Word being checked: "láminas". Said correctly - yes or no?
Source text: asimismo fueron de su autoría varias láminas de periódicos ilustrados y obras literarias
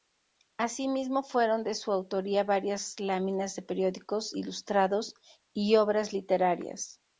yes